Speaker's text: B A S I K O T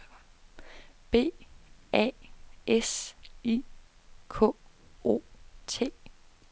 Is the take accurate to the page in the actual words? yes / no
yes